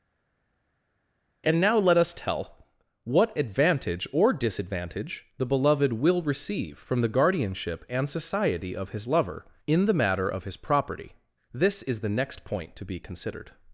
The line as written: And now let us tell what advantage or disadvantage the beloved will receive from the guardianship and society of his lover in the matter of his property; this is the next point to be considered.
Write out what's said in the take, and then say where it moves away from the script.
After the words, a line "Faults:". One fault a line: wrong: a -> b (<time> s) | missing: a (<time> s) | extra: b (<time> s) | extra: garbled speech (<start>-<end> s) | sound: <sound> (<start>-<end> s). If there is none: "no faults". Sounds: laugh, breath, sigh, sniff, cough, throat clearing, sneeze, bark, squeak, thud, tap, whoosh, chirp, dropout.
And now let us tell what advantage or disadvantage the beloved will receive from the guardianship and society of his lover in the matter of his property; this is the next point to be considered.
Faults:
no faults